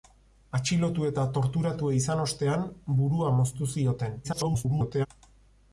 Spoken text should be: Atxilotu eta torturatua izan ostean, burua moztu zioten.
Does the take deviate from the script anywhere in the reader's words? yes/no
yes